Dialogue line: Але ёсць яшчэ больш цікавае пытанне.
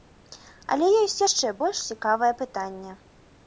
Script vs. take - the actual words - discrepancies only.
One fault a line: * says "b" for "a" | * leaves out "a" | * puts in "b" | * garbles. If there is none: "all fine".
all fine